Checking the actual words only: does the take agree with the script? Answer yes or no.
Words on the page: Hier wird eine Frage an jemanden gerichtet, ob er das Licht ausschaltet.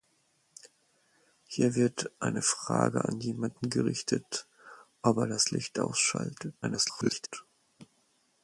no